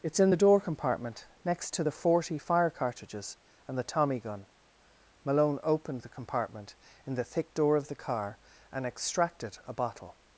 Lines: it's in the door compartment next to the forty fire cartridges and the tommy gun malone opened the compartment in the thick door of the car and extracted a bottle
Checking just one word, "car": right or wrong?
right